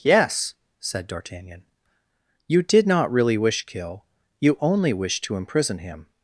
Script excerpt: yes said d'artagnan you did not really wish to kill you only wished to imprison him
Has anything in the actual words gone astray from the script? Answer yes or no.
yes